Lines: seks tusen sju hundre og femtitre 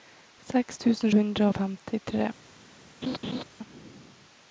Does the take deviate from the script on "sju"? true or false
true